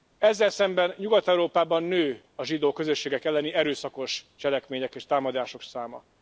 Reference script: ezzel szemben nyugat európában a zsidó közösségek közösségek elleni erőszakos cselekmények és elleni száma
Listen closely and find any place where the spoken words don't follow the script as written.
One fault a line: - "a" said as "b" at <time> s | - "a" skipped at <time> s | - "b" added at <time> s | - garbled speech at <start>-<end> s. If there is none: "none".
- "nő" added at 1.8 s
- "közösségek" skipped at 3.2 s
- "elleni" said as "támadások" at 5.0 s